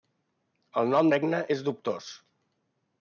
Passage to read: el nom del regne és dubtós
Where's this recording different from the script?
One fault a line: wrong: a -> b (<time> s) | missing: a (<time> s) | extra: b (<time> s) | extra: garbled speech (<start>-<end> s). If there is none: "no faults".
missing: del (1.1 s)